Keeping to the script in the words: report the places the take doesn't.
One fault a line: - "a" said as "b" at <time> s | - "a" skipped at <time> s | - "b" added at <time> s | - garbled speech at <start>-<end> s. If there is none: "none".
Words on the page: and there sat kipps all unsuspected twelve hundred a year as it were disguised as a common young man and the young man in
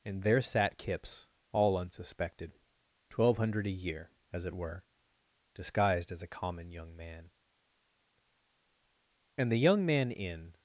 none